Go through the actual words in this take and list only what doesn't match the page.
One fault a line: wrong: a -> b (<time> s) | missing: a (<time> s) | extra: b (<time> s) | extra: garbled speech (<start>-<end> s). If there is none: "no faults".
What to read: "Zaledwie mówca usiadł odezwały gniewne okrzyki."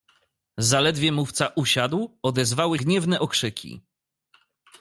no faults